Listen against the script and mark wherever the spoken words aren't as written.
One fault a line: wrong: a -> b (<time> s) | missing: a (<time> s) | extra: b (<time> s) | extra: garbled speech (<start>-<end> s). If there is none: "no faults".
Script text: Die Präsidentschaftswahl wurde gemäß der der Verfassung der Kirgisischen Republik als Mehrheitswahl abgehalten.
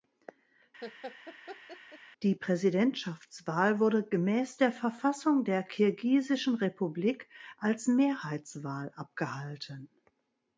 missing: der (4.7 s)